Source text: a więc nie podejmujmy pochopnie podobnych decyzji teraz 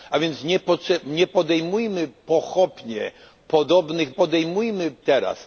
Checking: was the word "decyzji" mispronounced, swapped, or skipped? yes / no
yes